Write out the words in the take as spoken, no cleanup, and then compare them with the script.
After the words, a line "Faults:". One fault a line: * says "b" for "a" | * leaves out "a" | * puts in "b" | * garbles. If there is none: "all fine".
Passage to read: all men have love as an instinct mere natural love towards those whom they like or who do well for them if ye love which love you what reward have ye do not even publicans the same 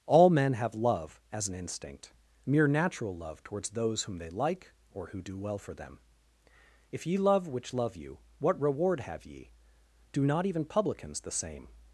all men have love as an instinct mere natural love towards those whom they like or who do well for them if ye love which love you what reward have ye do not even publicans the same
Faults:
all fine